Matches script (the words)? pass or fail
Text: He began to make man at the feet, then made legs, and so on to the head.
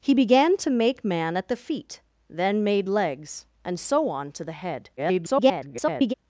fail